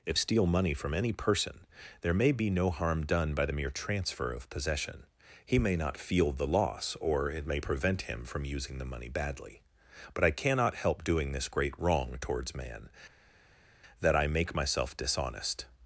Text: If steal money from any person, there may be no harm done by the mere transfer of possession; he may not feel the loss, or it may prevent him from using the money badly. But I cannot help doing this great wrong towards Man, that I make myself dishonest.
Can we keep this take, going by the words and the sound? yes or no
yes